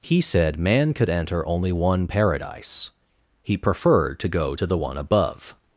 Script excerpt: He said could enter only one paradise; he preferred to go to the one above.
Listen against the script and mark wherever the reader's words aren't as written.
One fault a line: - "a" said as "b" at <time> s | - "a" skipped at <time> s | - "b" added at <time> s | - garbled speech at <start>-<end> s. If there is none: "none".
- "man" added at 0.6 s